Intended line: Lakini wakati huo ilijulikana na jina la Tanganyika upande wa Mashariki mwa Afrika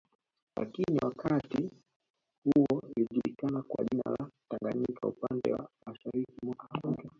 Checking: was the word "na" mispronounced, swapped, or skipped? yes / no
yes